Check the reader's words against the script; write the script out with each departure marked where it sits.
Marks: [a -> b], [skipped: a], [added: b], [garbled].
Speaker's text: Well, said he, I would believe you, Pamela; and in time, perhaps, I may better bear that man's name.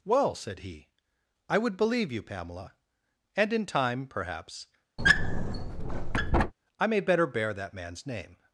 Well, said he, I would believe you, Pamela; and in time, perhaps, I may better bear that man's name.